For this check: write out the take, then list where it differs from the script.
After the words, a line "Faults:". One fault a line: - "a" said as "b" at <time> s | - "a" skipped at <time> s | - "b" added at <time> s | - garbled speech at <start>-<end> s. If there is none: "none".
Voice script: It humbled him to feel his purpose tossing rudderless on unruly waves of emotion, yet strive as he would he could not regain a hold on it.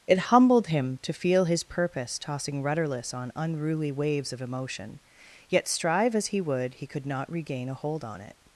It humbled him to feel his purpose tossing rudderless on unruly waves of emotion, yet strive as he would he could not regain a hold on it.
Faults:
none